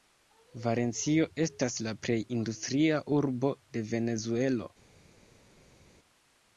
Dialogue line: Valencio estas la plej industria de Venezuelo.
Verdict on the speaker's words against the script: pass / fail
fail